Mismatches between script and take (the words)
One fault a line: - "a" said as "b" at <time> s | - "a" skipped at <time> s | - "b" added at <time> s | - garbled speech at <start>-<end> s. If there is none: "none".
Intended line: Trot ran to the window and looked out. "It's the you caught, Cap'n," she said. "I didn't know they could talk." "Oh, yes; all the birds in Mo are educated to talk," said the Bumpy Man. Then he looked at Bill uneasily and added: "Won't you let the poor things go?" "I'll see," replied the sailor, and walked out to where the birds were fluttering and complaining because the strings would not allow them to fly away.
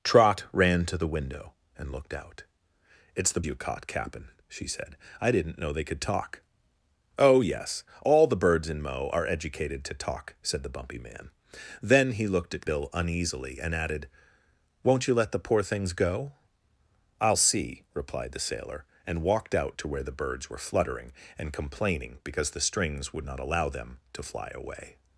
none